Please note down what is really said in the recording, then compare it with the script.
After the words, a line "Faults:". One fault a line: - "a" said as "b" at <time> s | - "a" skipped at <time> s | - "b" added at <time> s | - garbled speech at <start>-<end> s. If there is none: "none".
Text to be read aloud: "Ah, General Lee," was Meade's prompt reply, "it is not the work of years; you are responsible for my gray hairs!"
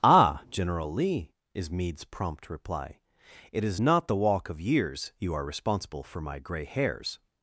"Ah, General Lee," is Meade's prompt reply, "it is not the walk of years; you are responsible for my gray hairs!"
Faults:
- "was" said as "is" at 1.5 s
- "work" said as "walk" at 4.1 s